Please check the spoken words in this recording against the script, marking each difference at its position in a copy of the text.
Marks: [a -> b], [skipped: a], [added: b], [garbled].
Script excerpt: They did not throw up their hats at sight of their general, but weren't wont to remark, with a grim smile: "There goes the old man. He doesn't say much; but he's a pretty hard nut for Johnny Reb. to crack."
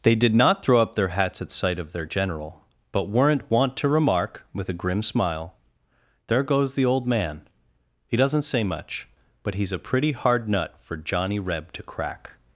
They did not throw up their hats at sight of their general, but weren't wont to remark, with a grim smile: "There goes the old man. He doesn't say much; but he's a pretty hard nut for Johnny Reb. to crack."